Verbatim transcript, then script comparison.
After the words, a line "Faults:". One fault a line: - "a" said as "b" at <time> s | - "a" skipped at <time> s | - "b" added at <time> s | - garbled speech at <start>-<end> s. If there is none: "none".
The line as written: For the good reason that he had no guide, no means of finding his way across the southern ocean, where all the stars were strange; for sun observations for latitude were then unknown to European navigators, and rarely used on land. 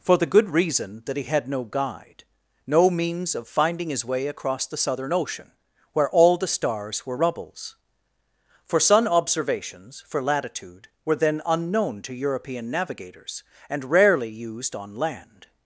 For the good reason that he had no guide, no means of finding his way across the southern ocean, where all the stars were rubbles; for sun observations for latitude were then unknown to European navigators, and rarely used on land.
Faults:
- "strange" said as "rubbles" at 7.1 s